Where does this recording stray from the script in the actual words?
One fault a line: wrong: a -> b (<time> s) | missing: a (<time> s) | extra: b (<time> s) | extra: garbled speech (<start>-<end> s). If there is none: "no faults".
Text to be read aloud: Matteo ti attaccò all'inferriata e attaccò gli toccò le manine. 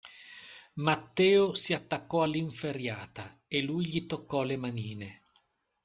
wrong: ti -> si (1.5 s)
wrong: attaccò -> lui (3.6 s)